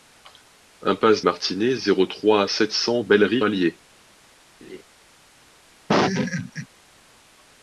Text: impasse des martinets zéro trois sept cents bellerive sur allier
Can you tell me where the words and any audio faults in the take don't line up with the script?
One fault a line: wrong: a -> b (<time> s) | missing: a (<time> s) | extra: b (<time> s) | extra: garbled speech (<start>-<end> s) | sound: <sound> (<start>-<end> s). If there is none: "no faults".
missing: des (1.2 s)
missing: sur (3.4 s)
sound: laugh (4.6-4.8 s)
sound: laugh (5.9-6.7 s)